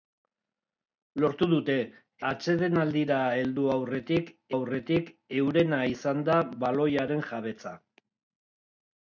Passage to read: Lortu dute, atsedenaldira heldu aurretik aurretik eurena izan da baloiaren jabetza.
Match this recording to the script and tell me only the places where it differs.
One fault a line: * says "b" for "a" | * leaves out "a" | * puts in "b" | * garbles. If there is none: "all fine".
all fine